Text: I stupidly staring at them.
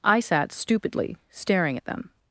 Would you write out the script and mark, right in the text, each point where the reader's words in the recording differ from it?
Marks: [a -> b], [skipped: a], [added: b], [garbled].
I [added: sat] stupidly staring at them.